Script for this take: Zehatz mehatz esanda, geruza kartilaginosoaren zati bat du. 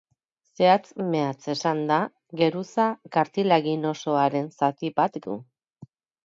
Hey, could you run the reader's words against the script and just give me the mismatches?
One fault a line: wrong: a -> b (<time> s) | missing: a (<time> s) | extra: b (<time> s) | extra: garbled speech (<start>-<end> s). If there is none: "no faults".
no faults